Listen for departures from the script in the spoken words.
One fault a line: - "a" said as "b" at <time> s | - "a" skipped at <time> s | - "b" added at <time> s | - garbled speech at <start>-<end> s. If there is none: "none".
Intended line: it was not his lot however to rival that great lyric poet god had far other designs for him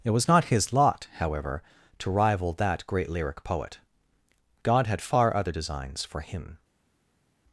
none